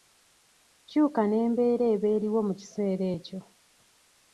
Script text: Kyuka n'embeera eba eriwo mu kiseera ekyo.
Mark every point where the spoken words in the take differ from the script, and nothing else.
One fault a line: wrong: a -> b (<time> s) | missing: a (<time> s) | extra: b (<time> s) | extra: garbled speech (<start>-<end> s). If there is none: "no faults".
no faults